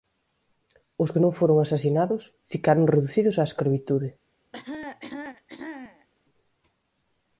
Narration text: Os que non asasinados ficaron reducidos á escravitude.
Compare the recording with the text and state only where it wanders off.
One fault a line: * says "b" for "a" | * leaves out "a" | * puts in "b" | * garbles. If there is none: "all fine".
* puts in "foron"